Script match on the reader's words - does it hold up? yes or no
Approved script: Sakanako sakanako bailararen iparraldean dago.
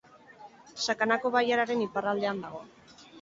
no